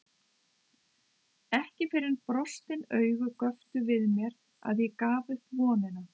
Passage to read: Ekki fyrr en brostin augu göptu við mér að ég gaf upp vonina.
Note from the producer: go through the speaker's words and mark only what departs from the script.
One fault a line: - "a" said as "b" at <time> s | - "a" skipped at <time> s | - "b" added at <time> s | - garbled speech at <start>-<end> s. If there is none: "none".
none